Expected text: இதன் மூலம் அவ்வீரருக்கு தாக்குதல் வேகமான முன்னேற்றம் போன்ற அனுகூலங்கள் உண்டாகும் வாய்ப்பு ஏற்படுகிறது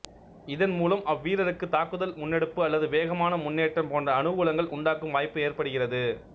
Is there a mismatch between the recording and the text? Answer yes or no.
yes